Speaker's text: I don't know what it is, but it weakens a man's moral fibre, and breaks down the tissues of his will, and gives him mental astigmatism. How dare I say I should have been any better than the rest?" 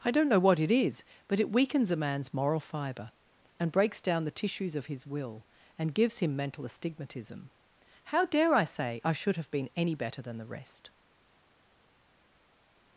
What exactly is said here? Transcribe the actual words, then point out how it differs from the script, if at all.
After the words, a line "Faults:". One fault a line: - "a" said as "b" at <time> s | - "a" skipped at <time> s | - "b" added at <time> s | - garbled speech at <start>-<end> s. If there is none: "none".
I don't know what it is, but it weakens a man's moral fibre, and breaks down the tissues of his will, and gives him mental astigmatism. How dare I say I should have been any better than the rest?"
Faults:
none